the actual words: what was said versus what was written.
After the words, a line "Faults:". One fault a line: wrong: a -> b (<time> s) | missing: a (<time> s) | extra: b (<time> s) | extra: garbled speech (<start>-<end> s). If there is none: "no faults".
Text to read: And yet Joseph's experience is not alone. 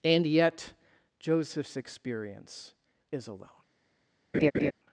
And yet Joseph's experience is alone.
Faults:
missing: not (3.3 s)